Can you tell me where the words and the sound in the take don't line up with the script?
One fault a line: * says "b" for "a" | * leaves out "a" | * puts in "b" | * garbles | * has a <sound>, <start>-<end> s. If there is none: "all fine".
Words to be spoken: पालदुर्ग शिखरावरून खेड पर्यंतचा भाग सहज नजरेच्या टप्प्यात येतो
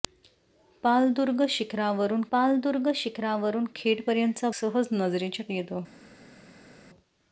* puts in "पालदुर्ग शिखरावरून"
* leaves out "भाग"
* leaves out "टप्प्यात"